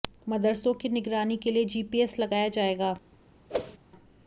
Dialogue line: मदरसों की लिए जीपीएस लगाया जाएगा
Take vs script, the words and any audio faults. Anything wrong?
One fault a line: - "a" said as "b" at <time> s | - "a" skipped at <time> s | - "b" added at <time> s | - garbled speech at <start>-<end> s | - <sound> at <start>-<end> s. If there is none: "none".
- "निगरानी के" added at 0.9 s
- whoosh at 3.5-3.8 s